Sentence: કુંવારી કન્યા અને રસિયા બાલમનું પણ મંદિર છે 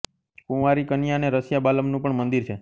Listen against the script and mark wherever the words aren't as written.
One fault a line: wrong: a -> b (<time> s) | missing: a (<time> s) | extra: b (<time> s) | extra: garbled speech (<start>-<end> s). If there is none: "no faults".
no faults